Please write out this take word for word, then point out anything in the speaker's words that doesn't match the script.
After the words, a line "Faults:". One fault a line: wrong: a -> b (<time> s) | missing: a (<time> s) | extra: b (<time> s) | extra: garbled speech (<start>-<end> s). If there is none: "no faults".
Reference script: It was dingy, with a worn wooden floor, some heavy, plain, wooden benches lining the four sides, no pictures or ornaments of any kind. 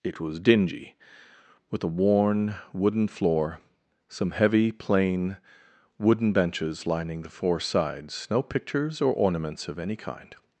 It was dingy, with a worn wooden floor, some heavy, plain, wooden benches lining the four sides, no pictures or ornaments of any kind.
Faults:
no faults